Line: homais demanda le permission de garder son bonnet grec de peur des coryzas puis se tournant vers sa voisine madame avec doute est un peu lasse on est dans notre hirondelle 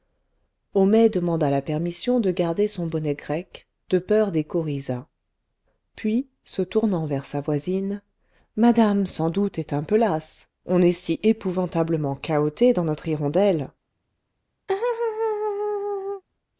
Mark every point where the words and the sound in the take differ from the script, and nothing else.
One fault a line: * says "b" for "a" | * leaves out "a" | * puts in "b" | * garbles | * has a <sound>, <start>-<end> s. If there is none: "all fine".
* says "la" for "le"
* says "sans" for "avec"
* puts in "si épouvantablement cahoté"
* has a laugh, 14.7-16.2 s